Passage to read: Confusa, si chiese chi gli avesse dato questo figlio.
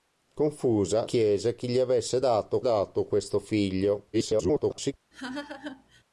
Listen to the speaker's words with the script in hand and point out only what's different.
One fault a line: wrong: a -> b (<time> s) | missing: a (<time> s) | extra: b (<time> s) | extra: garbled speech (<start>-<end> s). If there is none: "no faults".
missing: si (1.1 s)
extra: dato (2.6 s)
extra: garbled speech (4.1-4.9 s)